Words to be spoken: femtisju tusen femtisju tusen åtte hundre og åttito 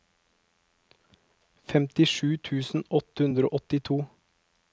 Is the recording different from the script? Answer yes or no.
yes